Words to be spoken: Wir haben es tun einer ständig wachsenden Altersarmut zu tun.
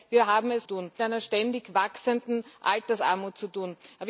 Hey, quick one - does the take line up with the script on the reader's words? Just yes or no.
yes